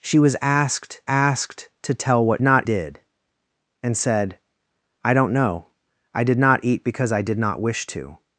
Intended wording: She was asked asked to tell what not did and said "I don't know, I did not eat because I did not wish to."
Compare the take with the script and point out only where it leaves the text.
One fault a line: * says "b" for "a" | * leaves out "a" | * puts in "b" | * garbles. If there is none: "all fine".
all fine